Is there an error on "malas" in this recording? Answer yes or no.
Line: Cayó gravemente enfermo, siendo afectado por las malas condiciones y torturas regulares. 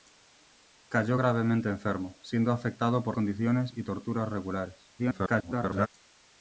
yes